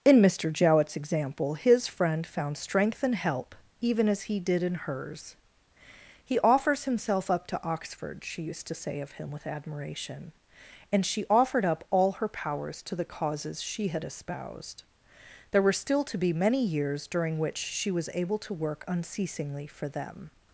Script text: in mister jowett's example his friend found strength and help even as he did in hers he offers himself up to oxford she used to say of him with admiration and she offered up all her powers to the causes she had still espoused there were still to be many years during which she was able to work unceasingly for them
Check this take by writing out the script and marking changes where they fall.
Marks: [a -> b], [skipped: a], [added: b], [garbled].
in mister jowett's example his friend found strength and help even as he did in hers he offers himself up to oxford she used to say of him with admiration and she offered up all her powers to the causes she had [skipped: still] espoused there were still to be many years during which she was able to work unceasingly for them